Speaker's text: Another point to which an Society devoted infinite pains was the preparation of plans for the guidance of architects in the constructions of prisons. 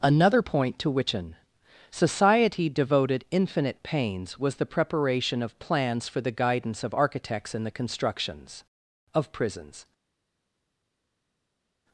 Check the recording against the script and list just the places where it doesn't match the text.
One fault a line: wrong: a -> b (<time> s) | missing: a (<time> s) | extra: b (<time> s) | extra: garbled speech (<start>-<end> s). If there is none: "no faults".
no faults